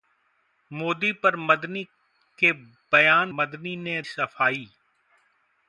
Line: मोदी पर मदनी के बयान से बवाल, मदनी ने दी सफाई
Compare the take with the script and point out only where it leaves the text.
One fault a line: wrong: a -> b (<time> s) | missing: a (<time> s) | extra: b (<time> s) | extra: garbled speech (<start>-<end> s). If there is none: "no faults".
missing: से बवाल (3.3 s)
missing: दी (4.0 s)